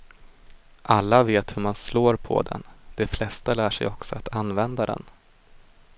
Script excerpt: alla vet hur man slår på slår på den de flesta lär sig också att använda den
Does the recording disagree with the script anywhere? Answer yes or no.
yes